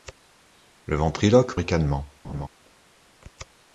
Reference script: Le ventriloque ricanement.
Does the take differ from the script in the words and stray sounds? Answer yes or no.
yes